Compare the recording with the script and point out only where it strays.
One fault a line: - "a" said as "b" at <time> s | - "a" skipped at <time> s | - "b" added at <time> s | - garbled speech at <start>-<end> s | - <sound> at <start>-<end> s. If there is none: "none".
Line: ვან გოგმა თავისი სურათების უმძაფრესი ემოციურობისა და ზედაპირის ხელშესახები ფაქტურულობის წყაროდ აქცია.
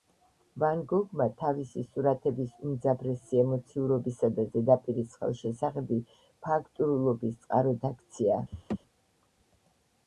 - laugh at 8.5-8.8 s